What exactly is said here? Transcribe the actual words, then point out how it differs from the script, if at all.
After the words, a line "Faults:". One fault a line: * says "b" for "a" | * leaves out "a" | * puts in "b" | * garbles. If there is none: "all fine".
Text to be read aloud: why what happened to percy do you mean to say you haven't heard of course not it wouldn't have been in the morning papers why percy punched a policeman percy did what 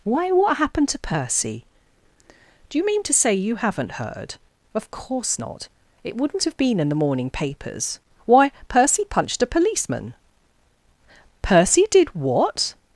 why what happened to percy do you mean to say you haven't heard of course not it wouldn't have been in the morning papers why percy punched a policeman percy did what
Faults:
all fine